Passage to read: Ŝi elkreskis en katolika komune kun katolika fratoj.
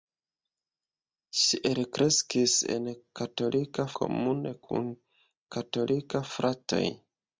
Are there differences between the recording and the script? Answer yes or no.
no